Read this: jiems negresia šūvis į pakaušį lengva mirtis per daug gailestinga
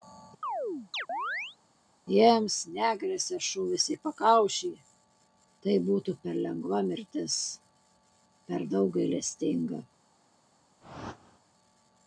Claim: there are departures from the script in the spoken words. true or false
true